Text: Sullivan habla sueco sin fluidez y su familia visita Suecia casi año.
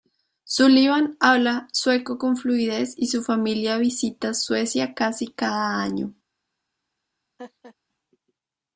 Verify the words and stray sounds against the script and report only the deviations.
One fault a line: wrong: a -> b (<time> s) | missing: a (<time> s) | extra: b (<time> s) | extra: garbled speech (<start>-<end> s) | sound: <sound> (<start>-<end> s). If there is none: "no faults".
wrong: sin -> con (2.2 s)
extra: cada (5.3 s)
sound: laugh (7.4-7.7 s)